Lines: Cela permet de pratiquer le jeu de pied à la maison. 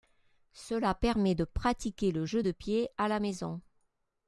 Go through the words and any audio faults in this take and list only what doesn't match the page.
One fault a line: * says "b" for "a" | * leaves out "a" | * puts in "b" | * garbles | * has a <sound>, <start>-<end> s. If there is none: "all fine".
all fine